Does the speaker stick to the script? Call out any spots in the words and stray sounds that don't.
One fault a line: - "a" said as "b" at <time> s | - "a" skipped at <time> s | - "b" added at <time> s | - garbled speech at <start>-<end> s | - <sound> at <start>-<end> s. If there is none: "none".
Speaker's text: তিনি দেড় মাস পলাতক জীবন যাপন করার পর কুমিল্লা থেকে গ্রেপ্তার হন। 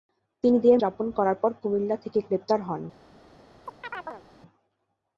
- "মাস পলাতক জীবন" skipped at 0.8 s
- chirp at 3.6-4.2 s